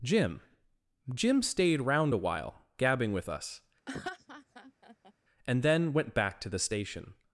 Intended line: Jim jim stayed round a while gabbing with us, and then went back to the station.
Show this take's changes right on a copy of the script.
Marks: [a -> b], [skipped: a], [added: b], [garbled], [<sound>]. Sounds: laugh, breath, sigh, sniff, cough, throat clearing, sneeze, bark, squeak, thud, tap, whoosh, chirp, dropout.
Jim jim stayed round a while gabbing with us, [laugh] and then went back to the station.